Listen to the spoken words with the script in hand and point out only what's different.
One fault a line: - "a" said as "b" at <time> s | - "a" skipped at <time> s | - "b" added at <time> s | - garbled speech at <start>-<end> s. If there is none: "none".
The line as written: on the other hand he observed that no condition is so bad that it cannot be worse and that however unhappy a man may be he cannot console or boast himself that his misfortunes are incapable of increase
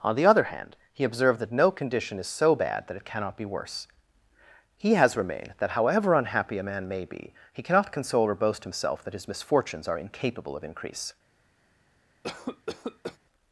- "and" said as "he has remained" at 4.8 s